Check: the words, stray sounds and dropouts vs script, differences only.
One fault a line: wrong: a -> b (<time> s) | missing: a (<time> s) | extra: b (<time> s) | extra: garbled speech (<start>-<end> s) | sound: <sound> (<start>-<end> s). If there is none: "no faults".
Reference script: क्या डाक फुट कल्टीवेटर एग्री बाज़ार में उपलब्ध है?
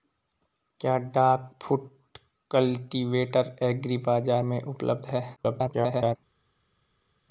extra: garbled speech (5.4-6.2 s)